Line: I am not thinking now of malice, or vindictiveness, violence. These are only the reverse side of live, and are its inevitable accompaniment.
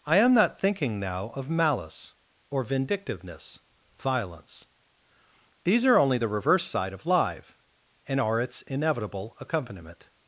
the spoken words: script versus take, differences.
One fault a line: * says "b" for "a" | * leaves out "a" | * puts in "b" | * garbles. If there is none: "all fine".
all fine